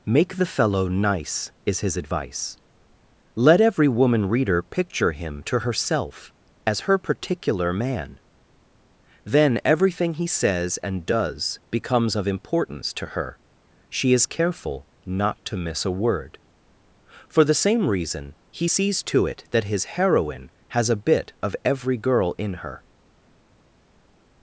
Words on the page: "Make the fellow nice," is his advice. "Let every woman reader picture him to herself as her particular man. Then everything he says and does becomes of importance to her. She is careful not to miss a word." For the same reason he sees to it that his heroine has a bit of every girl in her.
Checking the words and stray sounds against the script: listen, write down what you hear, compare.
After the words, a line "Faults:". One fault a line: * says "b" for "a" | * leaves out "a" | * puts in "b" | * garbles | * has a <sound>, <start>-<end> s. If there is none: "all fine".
"Make the fellow nice," is his advice. "Let every woman reader picture him to herself as her particular man. Then everything he says and does becomes of importance to her. She is careful not to miss a word." For the same reason he sees to it that his heroine has a bit of every girl in her.
Faults:
all fine